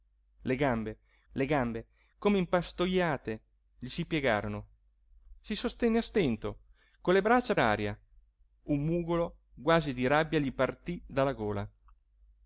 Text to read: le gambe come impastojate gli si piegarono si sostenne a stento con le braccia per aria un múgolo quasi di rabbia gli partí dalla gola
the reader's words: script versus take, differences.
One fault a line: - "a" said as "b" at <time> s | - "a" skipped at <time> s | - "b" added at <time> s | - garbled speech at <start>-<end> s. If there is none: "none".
- "le gambe" added at 1.3 s
- "per" skipped at 7.5 s